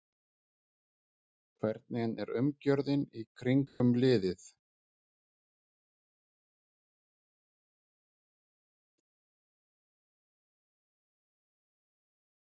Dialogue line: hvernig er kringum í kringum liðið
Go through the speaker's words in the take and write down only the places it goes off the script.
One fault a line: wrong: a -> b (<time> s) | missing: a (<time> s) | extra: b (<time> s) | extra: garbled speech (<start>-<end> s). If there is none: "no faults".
wrong: kringum -> umgjörðin (2.4 s)